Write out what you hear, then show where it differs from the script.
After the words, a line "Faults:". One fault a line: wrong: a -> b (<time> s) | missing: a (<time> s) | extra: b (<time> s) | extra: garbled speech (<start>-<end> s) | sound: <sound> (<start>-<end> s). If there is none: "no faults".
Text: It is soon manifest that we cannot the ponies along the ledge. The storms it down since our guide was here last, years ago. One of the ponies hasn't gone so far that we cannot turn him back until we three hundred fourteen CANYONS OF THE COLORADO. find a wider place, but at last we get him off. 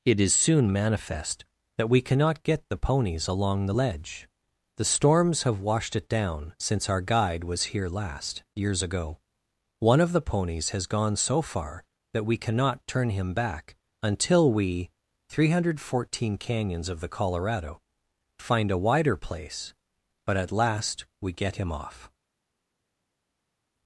It is soon manifest that we cannot get the ponies along the ledge. The storms have washed it down since our guide was here last, years ago. One of the ponies has gone so far that we cannot turn him back until we three hundred fourteen CANYONS OF THE COLORADO. find a wider place, but at last we get him off.
Faults:
extra: get (2.4 s)
extra: have washed (5.4 s)
wrong: hasn't -> has (10.7 s)